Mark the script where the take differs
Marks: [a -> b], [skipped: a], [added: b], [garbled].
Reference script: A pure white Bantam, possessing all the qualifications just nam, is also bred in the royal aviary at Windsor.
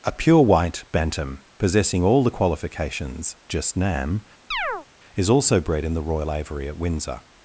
A pure white Bantam, possessing all the qualifications just nam, is also bred in the royal aviary at Windsor.